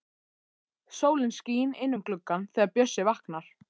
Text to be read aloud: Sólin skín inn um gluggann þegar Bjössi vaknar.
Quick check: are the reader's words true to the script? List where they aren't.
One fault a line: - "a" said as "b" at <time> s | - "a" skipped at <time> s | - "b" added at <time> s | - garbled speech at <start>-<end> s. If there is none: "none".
none